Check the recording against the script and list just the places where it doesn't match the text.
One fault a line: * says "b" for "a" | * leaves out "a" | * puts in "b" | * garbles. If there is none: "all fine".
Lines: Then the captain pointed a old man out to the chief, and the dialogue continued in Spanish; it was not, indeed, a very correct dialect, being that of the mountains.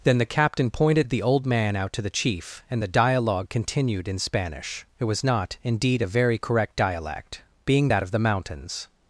* says "the" for "a"